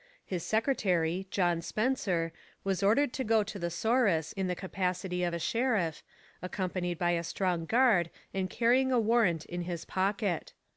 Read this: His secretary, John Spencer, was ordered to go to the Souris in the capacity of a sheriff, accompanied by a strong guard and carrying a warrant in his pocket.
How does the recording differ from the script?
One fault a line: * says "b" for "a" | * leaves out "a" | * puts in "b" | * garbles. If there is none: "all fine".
all fine